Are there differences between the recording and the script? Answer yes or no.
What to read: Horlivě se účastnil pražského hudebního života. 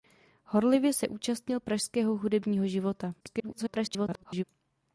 yes